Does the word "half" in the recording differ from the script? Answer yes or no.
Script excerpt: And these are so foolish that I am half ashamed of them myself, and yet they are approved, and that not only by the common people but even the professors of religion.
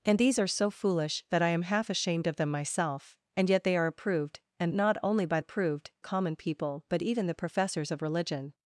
no